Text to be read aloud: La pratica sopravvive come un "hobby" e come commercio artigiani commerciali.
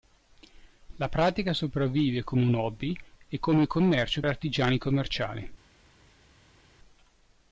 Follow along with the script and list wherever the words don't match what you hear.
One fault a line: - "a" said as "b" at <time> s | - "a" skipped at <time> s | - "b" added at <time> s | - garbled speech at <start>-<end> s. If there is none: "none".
none